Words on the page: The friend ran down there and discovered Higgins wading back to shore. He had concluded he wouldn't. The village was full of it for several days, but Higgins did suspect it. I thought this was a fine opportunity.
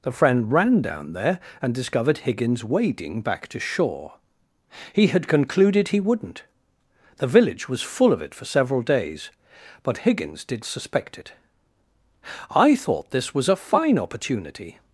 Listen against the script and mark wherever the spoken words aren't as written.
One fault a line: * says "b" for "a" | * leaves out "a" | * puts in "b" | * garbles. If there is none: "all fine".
all fine